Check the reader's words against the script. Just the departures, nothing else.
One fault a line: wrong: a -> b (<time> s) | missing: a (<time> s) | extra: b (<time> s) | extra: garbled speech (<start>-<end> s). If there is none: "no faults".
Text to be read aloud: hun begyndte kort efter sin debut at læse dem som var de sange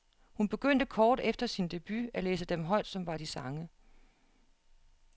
extra: højt (2.6 s)